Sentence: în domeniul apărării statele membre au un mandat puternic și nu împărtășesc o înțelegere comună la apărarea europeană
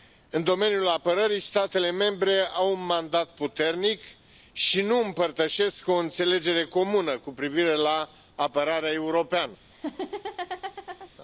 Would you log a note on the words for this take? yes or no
yes